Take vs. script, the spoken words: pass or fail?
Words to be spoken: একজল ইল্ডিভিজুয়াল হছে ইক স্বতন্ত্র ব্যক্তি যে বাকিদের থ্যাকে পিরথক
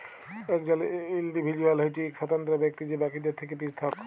pass